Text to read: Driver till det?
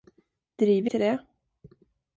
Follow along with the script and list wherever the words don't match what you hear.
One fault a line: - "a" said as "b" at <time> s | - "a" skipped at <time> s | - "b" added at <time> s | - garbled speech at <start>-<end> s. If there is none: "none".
none